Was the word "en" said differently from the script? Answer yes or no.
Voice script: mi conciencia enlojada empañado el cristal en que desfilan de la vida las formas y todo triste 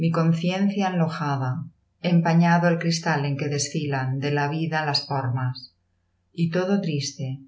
no